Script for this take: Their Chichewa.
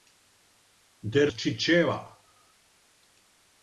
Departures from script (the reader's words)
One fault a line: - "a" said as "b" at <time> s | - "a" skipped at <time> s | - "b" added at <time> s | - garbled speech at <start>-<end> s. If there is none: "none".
none